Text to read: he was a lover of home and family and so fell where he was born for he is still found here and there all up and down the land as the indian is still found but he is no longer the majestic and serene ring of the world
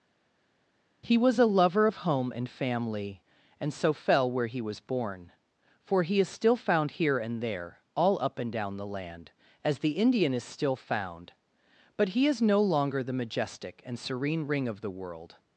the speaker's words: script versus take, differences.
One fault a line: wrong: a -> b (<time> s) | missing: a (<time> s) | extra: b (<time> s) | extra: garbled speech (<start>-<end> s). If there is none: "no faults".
no faults